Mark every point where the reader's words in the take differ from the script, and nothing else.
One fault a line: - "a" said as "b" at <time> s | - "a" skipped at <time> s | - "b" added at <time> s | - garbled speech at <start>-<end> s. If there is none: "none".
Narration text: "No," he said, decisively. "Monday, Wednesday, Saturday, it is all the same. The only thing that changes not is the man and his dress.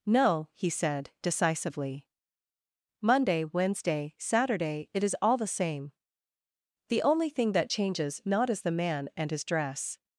none